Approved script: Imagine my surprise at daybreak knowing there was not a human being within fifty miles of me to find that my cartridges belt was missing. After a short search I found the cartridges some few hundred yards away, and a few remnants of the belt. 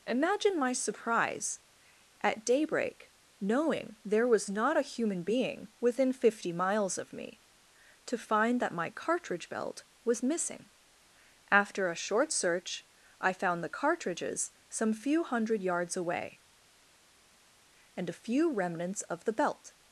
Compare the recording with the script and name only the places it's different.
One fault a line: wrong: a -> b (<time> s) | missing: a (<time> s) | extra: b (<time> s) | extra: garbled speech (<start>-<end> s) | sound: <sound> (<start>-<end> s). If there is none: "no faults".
wrong: cartridges -> cartridge (8.9 s)